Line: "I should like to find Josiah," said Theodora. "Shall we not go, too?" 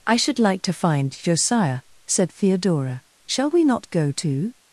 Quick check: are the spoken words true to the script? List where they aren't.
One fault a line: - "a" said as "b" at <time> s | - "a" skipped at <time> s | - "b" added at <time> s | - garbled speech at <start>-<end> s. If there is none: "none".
none